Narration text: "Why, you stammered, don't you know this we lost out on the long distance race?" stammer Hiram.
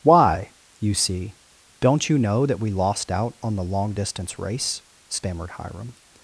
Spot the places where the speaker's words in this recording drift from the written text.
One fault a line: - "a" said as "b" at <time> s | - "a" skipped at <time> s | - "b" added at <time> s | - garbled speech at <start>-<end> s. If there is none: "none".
- "stammered" said as "see" at 0.9 s
- "this" said as "that" at 2.5 s
- "stammer" said as "stammered" at 5.1 s